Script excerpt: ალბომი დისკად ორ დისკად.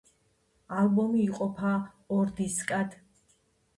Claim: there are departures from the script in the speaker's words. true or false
true